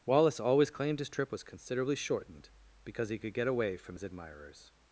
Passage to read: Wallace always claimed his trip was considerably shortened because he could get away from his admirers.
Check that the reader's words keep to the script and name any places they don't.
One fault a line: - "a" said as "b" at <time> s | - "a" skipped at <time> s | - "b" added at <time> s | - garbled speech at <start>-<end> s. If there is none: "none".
none